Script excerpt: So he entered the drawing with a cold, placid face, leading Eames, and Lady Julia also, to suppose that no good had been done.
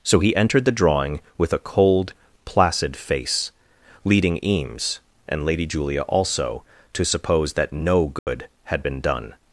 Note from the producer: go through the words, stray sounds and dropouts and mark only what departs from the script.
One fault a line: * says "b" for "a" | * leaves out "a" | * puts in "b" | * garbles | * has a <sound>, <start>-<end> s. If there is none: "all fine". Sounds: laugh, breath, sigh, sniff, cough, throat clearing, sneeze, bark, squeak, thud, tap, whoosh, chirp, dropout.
* has a dropout, 8.2-8.3 s